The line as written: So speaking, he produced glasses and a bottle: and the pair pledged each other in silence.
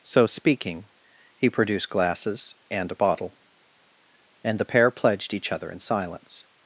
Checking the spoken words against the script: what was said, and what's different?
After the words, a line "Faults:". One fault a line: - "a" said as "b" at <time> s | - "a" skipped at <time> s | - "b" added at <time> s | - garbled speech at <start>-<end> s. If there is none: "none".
So speaking, he produced glasses and a bottle: and the pair pledged each other in silence.
Faults:
none